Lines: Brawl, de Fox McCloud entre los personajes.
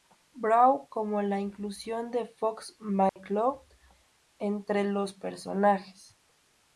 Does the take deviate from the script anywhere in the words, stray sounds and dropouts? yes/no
yes